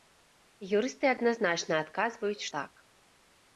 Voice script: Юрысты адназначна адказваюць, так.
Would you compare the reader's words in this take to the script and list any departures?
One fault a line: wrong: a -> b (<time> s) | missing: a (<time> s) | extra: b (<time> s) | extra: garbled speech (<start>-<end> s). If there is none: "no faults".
no faults